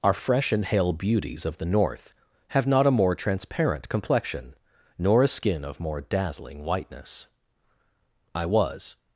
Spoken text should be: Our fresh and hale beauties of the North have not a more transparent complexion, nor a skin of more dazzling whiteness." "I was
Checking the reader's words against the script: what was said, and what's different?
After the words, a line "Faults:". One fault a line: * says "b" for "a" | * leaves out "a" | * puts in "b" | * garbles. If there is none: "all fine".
Our fresh and hale beauties of the North have not a more transparent complexion, nor a skin of more dazzling whiteness." "I was
Faults:
all fine